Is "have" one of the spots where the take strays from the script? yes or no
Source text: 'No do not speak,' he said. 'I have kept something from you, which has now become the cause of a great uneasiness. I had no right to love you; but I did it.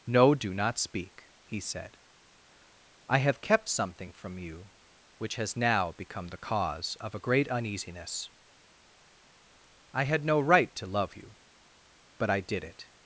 no